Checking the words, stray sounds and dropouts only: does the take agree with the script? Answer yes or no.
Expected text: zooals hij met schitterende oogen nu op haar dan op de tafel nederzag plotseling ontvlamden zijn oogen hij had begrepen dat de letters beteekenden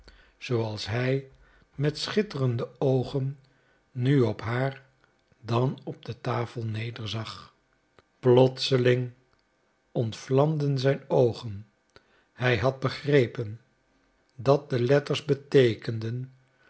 yes